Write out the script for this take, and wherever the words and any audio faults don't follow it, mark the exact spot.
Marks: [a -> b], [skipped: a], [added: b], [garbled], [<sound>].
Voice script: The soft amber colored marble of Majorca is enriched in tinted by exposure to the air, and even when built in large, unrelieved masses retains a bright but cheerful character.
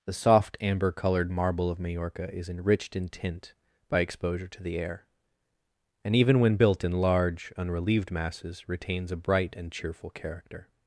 The soft amber colored marble of Majorca is enriched in [tinted -> tint] by exposure to the air, and even when built in large, unrelieved masses retains a bright [but -> and] cheerful character.